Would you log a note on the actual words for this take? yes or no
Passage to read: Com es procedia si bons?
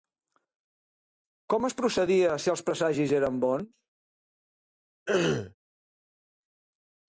yes